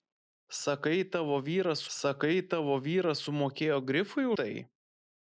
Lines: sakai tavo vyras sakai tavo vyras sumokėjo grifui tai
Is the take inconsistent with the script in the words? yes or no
no